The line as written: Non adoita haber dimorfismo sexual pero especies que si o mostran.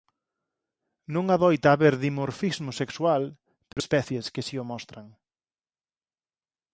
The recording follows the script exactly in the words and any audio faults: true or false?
false